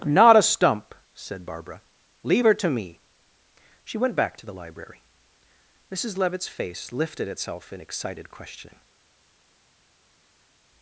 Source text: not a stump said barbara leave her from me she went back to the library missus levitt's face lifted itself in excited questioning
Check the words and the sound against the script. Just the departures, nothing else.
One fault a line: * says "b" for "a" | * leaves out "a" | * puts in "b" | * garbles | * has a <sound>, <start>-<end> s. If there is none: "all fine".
* says "to" for "from"